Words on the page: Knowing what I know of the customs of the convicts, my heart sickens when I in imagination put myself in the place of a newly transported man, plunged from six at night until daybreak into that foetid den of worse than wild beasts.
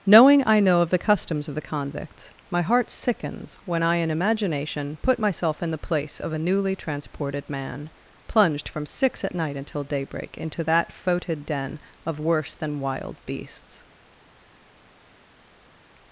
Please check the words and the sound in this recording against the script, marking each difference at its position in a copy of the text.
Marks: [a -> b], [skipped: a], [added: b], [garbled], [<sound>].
Knowing [skipped: what] I know of the customs of the convicts, my heart sickens when I in imagination put myself in the place of a newly transported man, plunged from six at night until daybreak into that foetid den of worse than wild beasts.